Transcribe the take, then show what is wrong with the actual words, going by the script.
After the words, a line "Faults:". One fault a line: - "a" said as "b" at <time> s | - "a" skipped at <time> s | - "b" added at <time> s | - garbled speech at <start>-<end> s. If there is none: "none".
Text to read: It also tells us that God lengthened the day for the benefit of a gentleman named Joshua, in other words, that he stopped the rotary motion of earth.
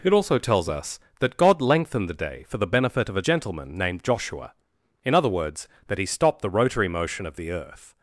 It also tells us that God lengthened the day for the benefit of a gentleman named Joshua, in other words, that he stopped the rotary motion of the earth.
Faults:
- "the" added at 7.4 s